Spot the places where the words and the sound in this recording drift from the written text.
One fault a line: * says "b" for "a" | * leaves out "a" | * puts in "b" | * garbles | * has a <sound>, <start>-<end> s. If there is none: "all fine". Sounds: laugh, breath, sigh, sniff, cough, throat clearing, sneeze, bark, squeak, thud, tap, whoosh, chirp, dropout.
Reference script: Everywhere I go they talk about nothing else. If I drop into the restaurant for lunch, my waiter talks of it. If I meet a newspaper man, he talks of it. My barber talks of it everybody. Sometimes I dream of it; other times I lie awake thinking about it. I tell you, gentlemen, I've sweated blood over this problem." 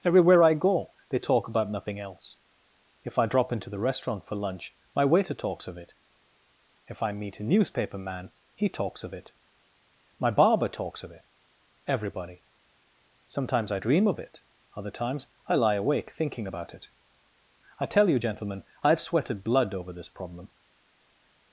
all fine